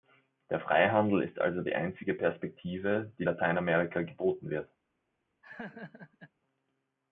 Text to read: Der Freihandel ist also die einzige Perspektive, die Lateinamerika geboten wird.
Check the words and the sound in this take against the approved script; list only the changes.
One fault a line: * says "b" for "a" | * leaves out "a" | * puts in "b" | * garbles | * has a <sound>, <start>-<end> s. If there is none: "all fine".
* has a laugh, 5.4-6.3 s